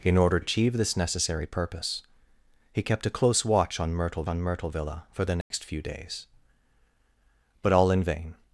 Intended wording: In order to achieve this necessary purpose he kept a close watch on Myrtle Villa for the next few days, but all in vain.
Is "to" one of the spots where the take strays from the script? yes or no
yes